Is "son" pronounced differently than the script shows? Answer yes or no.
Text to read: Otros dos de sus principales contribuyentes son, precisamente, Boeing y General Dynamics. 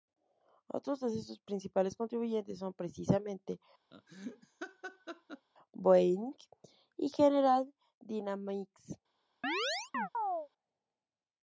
no